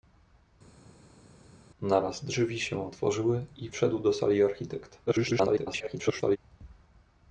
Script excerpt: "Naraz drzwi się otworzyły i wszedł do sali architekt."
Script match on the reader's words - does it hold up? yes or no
no